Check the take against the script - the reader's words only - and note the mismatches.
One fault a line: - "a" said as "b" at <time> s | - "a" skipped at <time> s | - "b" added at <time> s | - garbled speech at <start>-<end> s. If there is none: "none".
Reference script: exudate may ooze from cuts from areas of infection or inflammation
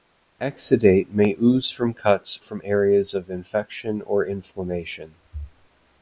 none